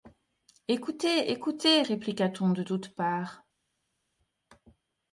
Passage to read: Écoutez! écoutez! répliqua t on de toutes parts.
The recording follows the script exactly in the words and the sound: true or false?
true